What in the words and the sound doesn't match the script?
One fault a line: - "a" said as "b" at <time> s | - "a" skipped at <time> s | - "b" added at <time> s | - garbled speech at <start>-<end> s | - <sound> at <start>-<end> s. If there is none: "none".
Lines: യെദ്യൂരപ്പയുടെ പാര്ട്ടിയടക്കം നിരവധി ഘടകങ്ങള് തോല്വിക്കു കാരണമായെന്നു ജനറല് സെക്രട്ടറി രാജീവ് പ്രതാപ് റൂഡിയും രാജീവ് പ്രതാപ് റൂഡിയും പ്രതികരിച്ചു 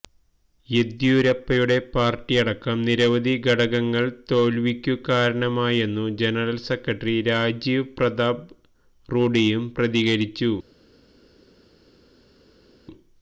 - "രാജീവ് പ്രതാപ് റൂഡിയും" skipped at 9.6 s